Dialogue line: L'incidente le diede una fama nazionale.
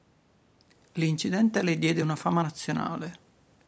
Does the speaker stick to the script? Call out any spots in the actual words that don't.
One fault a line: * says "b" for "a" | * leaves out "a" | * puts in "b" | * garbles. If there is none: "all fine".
all fine